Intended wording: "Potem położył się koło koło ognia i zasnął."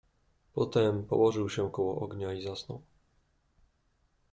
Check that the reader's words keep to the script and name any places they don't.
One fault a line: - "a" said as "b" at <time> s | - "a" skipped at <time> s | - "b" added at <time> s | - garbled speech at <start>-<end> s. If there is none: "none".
- "koło" skipped at 2.0 s